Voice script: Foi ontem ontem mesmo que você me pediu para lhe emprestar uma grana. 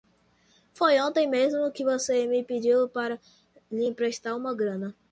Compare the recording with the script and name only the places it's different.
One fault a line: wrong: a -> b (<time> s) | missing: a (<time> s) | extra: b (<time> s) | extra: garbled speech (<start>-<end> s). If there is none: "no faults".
missing: ontem (1.3 s)